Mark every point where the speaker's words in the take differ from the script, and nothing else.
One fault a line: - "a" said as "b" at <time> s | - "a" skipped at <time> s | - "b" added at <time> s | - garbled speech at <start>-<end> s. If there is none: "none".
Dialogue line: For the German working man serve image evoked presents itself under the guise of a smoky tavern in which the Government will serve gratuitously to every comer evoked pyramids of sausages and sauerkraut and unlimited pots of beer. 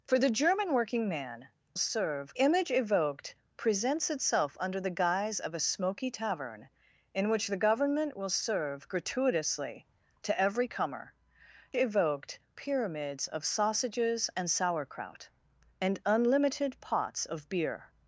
none